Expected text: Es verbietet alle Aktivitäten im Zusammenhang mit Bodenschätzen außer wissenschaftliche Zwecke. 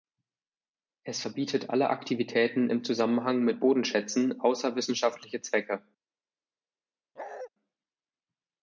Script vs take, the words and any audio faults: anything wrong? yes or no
yes